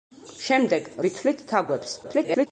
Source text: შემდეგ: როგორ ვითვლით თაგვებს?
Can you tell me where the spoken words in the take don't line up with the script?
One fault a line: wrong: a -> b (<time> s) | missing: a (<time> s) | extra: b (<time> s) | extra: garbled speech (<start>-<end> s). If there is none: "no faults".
missing: როგორ (0.9 s)
extra: garbled speech (2.0-2.5 s)